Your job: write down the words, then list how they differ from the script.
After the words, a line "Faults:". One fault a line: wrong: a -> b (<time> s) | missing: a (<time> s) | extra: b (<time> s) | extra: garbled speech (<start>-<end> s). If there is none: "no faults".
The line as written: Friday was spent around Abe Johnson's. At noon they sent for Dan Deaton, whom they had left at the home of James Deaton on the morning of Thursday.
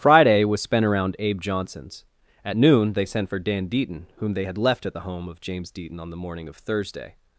Friday was spent around Abe Johnson's. At noon they sent for Dan Deaton, whom they had left at the home of James Deaton on the morning of Thursday.
Faults:
no faults